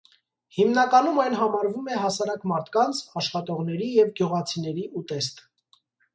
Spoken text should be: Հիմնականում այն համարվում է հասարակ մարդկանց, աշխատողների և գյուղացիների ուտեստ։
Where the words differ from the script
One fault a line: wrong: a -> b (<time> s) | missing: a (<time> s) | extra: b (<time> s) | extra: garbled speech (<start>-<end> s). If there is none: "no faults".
no faults